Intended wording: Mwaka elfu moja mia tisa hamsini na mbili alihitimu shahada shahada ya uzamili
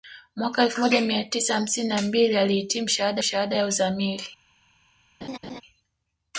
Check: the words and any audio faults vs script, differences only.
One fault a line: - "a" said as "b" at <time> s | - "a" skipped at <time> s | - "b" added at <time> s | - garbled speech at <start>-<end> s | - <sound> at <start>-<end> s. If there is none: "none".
- laugh at 5.2-5.6 s